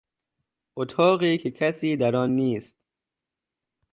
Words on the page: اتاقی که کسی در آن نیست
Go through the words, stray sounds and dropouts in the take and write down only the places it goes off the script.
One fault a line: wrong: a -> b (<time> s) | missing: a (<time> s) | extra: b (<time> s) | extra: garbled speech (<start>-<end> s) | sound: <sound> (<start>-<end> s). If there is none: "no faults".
no faults